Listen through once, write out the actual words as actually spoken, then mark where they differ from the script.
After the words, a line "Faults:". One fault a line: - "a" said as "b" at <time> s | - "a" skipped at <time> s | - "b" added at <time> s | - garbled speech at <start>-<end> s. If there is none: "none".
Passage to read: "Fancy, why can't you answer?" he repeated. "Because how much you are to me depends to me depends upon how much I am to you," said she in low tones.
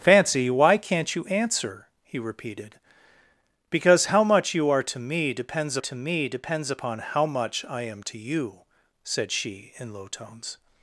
"Fancy, why can't you answer?" he repeated. "Because how much you are to me depends to me depends upon how much I am to you," said she in low tones.
Faults:
none